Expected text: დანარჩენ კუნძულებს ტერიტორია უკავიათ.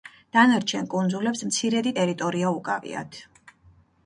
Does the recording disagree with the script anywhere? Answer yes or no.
yes